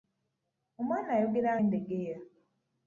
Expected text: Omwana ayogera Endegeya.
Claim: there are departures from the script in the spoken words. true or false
false